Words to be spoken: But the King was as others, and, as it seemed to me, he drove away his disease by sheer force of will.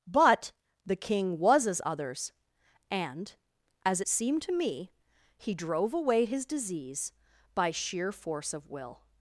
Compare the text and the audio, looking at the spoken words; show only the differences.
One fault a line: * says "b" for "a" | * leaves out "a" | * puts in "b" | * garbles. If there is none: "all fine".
all fine